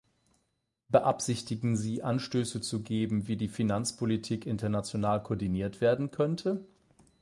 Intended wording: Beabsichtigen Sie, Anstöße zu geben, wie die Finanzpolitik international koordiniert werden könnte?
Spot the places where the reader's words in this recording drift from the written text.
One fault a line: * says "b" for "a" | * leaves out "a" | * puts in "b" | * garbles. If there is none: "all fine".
all fine